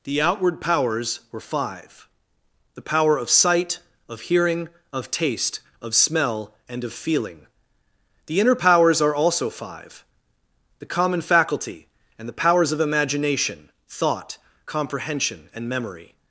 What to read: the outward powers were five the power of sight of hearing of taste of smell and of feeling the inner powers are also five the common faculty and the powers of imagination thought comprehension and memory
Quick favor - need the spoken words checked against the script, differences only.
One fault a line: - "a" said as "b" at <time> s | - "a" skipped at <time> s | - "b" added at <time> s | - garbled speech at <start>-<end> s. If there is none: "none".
none